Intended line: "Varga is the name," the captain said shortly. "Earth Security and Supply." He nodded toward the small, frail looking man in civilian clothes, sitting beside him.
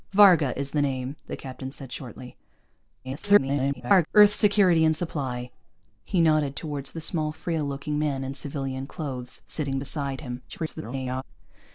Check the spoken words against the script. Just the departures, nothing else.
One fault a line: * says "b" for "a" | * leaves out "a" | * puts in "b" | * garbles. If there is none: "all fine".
* garbles
* garbles